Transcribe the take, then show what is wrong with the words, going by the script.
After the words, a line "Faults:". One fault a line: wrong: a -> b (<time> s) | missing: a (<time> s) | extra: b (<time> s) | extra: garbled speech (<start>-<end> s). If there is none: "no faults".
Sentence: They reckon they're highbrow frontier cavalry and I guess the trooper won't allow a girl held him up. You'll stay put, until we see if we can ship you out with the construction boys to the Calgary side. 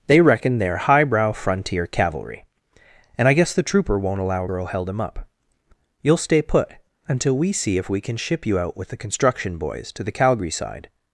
They reckon they're highbrow frontier cavalry and I guess the trooper won't allow a girl held him up. You'll stay put, until we see if we can ship you out with the construction boys to the Calgary side.
Faults:
no faults